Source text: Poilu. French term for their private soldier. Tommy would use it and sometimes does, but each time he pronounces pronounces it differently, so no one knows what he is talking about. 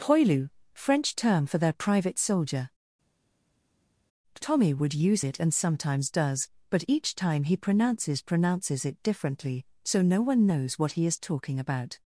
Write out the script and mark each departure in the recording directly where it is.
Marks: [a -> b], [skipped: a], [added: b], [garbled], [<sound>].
Poilu. French term for their private soldier. Tommy would use it and sometimes does, but each time he pronounces pronounces it differently, so no one knows what he is talking about.